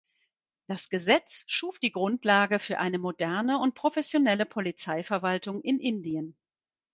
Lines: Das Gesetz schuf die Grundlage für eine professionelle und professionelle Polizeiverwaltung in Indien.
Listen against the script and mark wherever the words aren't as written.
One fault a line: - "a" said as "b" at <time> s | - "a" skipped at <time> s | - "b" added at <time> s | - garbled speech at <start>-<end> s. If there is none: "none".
- "professionelle" said as "moderne" at 3.0 s